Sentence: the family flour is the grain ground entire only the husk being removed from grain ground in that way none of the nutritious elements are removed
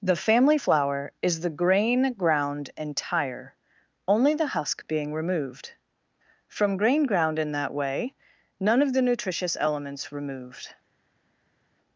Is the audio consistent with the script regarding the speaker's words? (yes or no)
no